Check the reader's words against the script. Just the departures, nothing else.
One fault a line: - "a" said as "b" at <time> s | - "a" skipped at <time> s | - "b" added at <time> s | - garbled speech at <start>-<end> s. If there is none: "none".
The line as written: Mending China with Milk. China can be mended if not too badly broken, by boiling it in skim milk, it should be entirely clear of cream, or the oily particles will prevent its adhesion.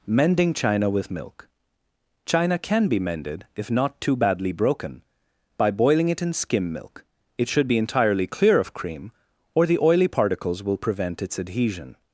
none